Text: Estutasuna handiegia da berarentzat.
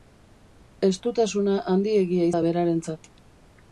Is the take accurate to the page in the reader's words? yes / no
yes